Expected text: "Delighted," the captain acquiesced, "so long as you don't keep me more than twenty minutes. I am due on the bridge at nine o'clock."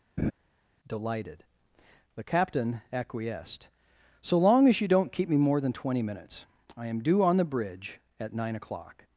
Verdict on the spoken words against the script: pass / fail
pass